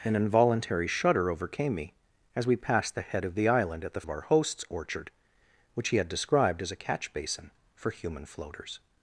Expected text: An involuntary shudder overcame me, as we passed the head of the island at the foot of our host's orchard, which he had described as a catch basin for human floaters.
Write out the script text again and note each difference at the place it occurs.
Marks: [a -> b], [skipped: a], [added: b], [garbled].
An involuntary shudder overcame me, as we passed the head of the island at the [skipped: foot] of our host's orchard, which he had described as a catch basin for human floaters.